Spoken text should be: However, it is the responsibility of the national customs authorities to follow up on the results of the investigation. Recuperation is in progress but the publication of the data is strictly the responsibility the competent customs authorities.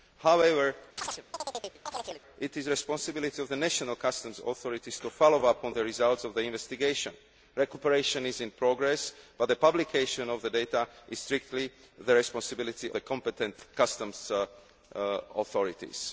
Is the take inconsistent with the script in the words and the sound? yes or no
yes